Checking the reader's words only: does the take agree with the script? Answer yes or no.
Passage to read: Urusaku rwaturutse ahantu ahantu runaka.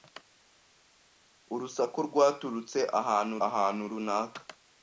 yes